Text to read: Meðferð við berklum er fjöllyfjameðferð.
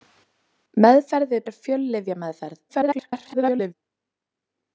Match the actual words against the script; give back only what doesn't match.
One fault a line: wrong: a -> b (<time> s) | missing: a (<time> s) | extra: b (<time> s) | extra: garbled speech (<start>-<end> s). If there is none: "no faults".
missing: berklum (1.4 s)
extra: garbled speech (2.7-3.7 s)